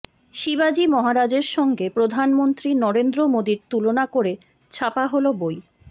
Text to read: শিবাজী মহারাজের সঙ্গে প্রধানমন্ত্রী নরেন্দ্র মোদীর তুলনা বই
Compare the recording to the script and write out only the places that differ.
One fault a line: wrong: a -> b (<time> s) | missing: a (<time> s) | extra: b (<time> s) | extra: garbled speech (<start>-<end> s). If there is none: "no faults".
extra: করে ছাপা হল (4.1 s)